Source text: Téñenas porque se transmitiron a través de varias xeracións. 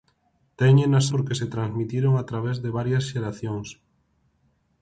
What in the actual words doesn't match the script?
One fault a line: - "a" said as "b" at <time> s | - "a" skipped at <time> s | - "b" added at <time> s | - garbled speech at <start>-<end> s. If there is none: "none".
none